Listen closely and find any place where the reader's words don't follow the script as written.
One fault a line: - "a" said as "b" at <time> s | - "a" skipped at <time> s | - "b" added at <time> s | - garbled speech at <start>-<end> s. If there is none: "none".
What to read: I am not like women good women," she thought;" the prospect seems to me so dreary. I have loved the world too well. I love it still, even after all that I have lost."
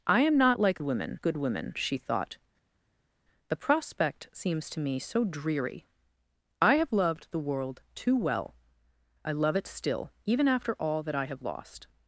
none